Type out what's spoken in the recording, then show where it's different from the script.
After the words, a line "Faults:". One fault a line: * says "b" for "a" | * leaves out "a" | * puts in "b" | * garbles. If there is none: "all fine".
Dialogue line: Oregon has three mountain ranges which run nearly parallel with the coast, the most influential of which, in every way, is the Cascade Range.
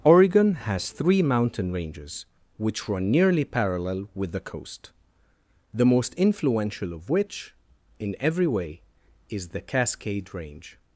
Oregon has three mountain ranges which run nearly parallel with the coast, the most influential of which, in every way, is the Cascade Range.
Faults:
all fine